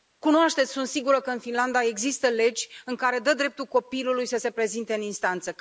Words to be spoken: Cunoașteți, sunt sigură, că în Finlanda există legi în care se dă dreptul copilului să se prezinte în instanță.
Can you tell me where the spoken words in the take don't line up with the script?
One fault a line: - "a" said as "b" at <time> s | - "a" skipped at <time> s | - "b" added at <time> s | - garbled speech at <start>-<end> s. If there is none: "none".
none